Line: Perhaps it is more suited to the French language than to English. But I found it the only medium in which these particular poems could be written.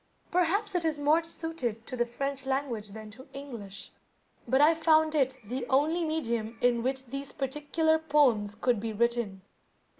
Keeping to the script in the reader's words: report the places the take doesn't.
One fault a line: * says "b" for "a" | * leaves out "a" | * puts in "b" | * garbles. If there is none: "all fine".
all fine